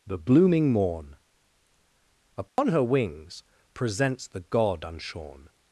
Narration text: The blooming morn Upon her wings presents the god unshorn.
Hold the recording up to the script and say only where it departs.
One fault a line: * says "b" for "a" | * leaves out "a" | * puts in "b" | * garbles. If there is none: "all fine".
all fine